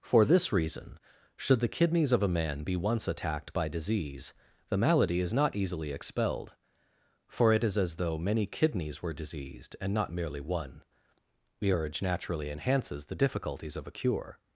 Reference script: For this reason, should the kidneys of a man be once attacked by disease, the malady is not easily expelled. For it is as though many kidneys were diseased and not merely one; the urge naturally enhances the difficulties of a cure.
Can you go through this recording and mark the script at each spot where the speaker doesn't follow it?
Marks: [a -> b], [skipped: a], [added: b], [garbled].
For this reason, should the kidneys of a man be once attacked by disease, the malady is not easily expelled. For it is as though many kidneys were diseased and not merely one; the urge naturally enhances the difficulties of a cure.